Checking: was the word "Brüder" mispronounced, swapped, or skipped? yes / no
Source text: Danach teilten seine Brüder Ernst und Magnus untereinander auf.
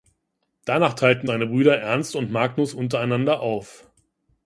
no